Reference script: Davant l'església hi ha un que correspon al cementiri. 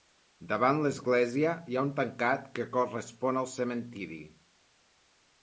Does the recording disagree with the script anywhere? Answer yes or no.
yes